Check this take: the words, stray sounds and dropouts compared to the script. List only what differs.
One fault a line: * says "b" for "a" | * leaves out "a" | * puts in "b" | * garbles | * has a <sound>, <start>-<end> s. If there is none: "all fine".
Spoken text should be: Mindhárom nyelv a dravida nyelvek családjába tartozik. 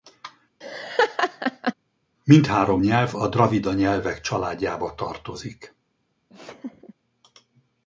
* has a laugh, 0.6-1.7 s
* has a laugh, 6.3-6.9 s